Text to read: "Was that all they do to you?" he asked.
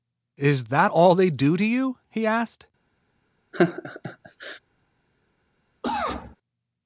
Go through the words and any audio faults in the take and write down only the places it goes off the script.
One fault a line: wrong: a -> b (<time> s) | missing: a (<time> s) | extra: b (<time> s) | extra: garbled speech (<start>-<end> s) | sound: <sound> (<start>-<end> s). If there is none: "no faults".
wrong: Was -> Is (0.4 s)
sound: laugh (3.5-4.6 s)
sound: cough (5.8-6.4 s)